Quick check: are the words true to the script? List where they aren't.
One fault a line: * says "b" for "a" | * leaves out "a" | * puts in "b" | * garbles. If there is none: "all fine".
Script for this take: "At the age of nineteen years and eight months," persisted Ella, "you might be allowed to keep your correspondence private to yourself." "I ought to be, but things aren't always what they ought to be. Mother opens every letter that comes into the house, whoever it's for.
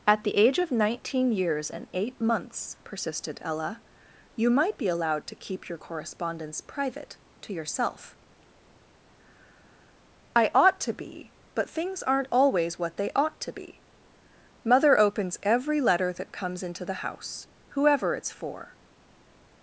all fine